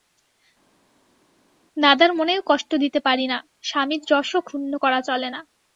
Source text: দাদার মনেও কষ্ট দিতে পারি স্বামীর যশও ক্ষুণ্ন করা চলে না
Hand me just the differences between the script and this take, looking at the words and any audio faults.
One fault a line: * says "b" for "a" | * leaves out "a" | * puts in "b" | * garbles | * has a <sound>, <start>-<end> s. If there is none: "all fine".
* puts in "না"